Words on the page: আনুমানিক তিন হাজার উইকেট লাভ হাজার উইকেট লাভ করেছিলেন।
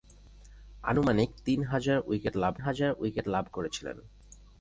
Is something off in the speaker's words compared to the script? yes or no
no